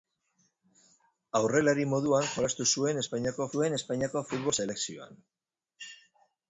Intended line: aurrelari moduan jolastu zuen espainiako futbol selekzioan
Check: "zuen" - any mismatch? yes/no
no